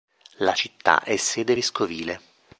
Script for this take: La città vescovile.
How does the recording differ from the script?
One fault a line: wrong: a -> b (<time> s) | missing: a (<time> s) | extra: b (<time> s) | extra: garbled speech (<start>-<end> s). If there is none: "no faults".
extra: è sede (1.0 s)